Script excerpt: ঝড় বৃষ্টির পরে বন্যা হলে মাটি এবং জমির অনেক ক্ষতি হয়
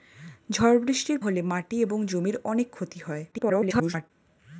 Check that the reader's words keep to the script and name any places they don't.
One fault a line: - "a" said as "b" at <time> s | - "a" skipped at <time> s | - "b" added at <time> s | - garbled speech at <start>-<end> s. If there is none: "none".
- "পরে বন্যা" skipped at 1.2 s
- garbled speech at 3.3-4.1 s